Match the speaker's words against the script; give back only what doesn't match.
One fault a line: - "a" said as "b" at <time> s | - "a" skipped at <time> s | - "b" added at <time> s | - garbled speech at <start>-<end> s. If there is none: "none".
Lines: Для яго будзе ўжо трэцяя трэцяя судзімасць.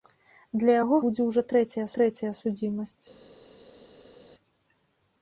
none